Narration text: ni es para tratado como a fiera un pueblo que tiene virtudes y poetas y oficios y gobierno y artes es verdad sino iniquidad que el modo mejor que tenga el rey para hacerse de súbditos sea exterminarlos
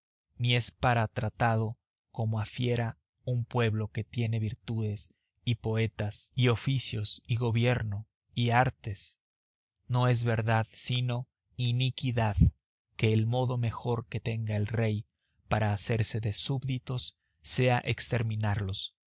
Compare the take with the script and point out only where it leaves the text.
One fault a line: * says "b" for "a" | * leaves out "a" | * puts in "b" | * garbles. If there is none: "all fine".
* puts in "no"